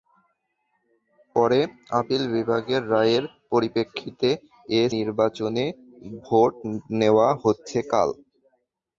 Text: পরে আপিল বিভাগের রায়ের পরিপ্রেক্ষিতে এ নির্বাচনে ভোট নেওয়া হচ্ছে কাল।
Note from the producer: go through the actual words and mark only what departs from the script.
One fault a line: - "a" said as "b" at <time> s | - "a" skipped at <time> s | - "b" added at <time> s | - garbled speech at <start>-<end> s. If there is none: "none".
none